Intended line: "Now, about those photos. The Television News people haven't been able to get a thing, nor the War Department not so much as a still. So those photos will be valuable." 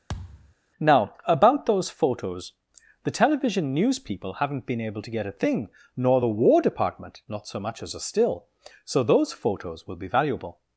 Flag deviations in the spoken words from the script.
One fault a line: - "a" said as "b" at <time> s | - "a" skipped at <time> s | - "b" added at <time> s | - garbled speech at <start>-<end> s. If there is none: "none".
none